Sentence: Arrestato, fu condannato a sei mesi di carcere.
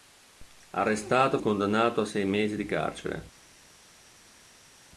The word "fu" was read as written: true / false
false